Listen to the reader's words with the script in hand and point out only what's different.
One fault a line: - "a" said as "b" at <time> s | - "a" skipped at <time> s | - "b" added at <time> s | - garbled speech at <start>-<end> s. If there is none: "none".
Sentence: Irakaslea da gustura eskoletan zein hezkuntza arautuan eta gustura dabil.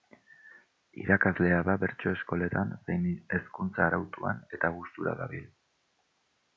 - "gustura" said as "bertso" at 1.8 s